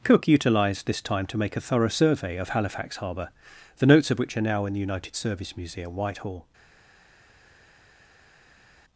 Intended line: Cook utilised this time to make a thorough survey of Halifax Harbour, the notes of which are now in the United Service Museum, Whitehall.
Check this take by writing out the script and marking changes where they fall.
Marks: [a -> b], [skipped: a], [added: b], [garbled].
Cook utilised this time to make a thorough survey of Halifax Harbour, the notes of which are now in the United Service Museum, Whitehall.